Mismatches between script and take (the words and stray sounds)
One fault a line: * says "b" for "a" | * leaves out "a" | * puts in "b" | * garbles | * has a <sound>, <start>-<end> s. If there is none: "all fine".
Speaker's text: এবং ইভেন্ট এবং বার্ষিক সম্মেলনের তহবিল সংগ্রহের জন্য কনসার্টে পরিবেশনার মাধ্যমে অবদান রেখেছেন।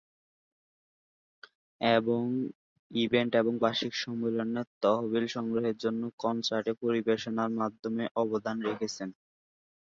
all fine